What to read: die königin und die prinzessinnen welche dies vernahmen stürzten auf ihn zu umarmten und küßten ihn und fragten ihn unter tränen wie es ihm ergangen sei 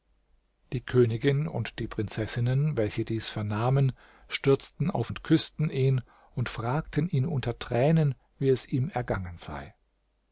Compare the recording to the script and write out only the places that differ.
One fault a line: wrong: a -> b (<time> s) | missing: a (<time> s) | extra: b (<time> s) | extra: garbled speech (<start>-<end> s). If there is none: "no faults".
missing: ihn zu umarmten (5.1 s)